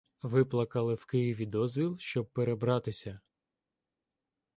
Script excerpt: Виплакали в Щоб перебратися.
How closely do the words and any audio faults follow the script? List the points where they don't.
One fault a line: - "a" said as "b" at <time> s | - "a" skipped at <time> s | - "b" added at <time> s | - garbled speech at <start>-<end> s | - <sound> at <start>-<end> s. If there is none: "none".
- "Києві дозвіл" added at 1.0 s